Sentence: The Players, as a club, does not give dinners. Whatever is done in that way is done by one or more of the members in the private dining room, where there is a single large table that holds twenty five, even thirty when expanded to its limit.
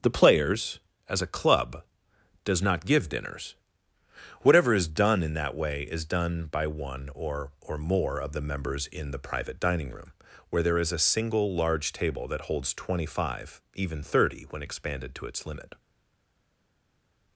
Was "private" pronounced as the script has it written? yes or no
yes